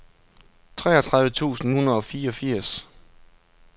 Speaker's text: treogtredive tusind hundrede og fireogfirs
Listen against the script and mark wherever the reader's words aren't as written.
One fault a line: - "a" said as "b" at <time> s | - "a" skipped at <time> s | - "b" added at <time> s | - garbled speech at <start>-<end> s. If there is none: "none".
none